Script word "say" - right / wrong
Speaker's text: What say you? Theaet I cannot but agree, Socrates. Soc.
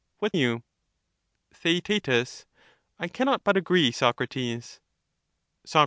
wrong